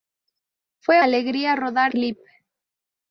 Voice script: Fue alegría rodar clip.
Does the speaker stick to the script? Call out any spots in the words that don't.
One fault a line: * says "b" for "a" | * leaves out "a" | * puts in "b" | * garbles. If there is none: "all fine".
all fine